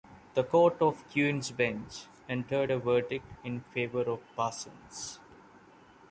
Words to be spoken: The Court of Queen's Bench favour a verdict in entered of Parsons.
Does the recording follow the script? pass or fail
fail